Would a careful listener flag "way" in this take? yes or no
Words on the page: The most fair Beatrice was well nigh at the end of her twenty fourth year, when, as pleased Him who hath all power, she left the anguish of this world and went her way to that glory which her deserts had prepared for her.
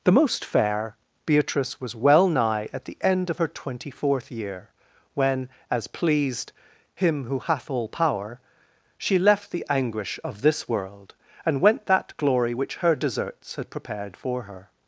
yes